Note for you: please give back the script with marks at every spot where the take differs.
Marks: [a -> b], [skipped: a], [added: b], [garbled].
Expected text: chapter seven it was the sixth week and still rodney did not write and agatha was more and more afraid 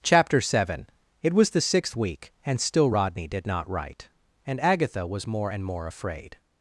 chapter seven it was the sixth week and still rodney did not write and agatha was more and more afraid